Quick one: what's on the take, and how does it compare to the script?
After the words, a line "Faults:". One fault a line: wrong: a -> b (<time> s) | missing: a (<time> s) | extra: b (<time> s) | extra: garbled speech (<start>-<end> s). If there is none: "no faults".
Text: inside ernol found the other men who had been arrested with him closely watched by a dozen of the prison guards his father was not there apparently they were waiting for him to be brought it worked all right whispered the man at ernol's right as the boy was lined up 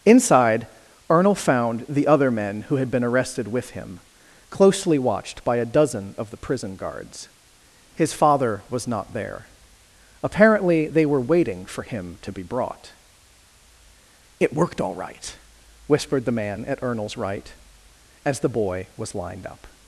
inside ernol found the other men who had been arrested with him closely watched by a dozen of the prison guards his father was not there apparently they were waiting for him to be brought it worked all right whispered the man at ernol's right as the boy was lined up
Faults:
no faults